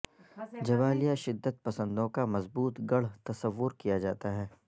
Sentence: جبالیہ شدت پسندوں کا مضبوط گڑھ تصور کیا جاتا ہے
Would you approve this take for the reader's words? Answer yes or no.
yes